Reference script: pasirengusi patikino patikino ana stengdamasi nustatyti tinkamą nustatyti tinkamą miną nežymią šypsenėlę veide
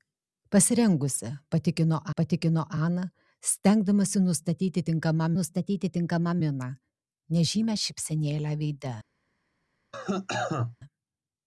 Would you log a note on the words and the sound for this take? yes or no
yes